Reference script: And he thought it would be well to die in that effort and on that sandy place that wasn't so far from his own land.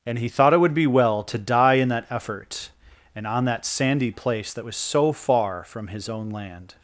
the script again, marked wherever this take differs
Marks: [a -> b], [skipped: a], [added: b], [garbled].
And he thought it would be well to die in that effort and on that sandy place that [wasn't -> was] so far from his own land.